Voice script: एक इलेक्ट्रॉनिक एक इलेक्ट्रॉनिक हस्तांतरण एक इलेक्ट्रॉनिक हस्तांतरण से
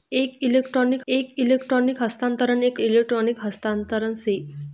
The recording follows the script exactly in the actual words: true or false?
true